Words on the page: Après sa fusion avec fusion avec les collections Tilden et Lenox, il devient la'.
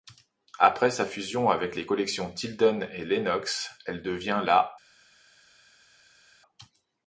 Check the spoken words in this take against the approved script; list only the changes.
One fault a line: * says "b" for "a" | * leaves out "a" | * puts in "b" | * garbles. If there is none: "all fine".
* leaves out "fusion avec"
* says "elle" for "il"